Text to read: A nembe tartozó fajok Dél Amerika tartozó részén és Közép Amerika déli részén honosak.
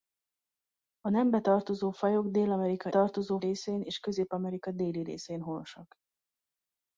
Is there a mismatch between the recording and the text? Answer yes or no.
no